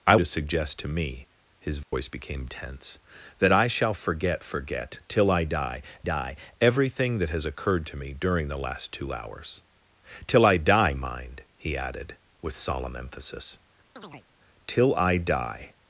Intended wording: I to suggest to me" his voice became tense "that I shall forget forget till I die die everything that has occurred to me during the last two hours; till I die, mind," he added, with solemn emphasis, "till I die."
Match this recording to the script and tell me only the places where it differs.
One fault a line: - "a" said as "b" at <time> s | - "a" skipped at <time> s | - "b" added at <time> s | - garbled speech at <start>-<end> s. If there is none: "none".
none